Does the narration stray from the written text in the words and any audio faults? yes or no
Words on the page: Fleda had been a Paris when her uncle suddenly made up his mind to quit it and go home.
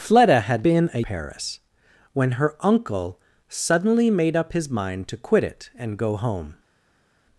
no